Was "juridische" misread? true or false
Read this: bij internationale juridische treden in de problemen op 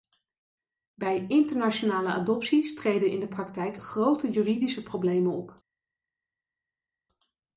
true